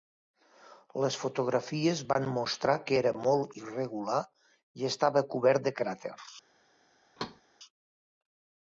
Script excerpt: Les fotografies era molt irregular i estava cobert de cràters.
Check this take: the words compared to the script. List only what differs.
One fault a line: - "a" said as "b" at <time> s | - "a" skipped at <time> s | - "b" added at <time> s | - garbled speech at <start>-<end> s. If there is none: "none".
- "van mostrar que" added at 2.1 s